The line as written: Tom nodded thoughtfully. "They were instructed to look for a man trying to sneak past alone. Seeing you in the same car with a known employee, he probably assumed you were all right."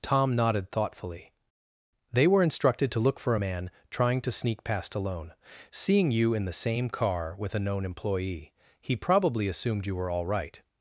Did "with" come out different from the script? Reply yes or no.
no